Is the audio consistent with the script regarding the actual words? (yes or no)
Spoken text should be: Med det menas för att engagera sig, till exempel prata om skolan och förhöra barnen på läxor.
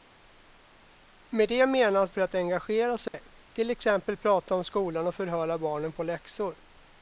yes